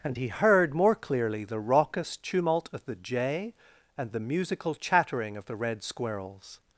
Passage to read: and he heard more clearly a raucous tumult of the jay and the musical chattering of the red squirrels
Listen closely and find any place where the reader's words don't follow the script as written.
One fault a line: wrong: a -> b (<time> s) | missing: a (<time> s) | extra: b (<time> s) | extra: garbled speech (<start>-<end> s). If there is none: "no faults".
wrong: a -> the (1.4 s)